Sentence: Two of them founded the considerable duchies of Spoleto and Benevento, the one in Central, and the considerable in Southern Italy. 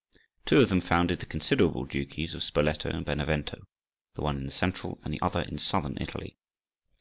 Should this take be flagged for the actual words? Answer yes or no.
yes